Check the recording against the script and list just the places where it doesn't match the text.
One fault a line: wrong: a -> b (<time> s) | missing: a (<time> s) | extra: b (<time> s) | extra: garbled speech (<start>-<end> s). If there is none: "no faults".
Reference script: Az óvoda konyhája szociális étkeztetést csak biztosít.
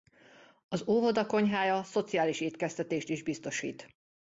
wrong: csak -> is (3.1 s)